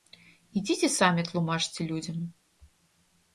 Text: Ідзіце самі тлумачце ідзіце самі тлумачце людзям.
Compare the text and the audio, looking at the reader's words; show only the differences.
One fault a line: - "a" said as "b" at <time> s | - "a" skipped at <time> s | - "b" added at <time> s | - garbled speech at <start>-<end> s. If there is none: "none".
- "ідзіце самі тлумачце" skipped at 1.9 s